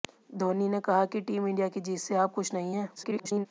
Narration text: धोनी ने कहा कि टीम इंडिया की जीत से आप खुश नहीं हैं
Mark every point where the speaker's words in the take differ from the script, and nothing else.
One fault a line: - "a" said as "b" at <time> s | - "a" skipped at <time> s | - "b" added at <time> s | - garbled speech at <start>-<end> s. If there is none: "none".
- garbled speech at 3.0-3.5 s